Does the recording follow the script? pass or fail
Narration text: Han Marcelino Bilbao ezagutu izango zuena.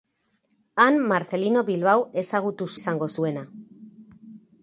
pass